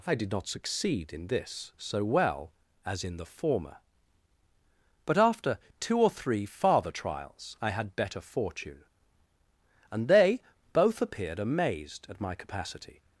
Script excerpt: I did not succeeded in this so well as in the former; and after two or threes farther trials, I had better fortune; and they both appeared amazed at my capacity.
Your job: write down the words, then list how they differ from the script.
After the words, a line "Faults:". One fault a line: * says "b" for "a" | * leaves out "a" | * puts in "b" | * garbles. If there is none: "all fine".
I did not succeed in this so well as in the former; but after two or three farther trials, I had better fortune; and they both appeared amazed at my capacity.
Faults:
* says "succeed" for "succeeded"
* says "but" for "and"
* says "three" for "threes"